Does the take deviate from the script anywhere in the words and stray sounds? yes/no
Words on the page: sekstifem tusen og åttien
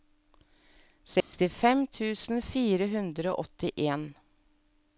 yes